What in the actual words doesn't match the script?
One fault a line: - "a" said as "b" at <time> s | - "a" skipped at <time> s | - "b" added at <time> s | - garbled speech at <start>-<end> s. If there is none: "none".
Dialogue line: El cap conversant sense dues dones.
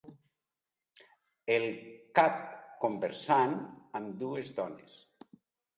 - "sense" said as "amb" at 4.0 s